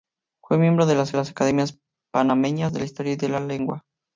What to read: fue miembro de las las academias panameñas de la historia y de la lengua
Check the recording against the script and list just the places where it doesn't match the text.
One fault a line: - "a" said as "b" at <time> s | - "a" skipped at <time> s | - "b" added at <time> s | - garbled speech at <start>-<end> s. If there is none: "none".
none